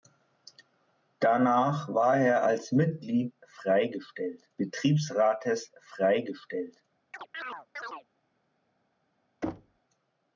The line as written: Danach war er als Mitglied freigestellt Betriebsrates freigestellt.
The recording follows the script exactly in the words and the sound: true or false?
false